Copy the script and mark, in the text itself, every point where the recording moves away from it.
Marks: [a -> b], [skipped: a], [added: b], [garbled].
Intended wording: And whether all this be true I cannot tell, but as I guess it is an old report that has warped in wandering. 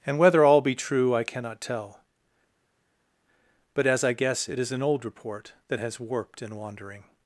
And whether all [skipped: this] be true I cannot tell, but as I guess it is an old report that has warped in wandering.